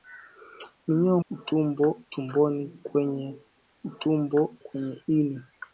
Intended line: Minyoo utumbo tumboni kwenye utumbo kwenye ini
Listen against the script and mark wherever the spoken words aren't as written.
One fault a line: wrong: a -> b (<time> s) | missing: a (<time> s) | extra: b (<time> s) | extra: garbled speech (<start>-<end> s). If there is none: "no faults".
no faults